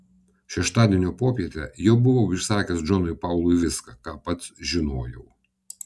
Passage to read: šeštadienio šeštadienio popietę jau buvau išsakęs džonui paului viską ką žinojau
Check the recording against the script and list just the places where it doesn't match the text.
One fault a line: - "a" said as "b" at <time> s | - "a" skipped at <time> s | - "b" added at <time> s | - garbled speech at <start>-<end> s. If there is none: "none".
- "šeštadienio" skipped at 1.1 s
- "pats" added at 4.3 s